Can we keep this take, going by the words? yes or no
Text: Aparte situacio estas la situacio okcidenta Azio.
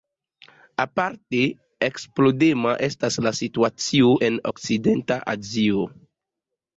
no